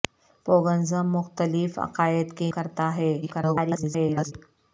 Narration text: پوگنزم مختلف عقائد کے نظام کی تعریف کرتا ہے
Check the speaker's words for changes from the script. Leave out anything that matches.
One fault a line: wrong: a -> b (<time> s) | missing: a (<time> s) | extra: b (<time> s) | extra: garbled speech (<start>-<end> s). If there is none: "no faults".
missing: نظام کی تعریف (2.5 s)
extra: garbled speech (3.2-4.3 s)